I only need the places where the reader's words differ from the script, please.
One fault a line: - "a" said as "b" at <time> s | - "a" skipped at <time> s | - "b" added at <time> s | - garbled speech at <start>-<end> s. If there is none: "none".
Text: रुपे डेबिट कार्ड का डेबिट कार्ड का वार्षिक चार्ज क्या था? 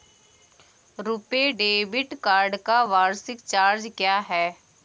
- "डेबिट कार्ड का" skipped at 2.8 s
- "था" said as "है" at 4.2 s